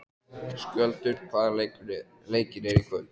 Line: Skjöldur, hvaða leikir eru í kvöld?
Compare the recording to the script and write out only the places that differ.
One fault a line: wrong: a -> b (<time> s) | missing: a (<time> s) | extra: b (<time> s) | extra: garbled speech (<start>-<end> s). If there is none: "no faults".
no faults